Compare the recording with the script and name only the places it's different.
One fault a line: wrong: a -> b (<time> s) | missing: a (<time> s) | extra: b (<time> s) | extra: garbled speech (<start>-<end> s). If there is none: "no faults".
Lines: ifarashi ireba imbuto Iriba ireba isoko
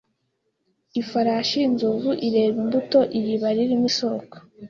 extra: inzovu (1.7 s)
wrong: ireba -> ririmo (3.6 s)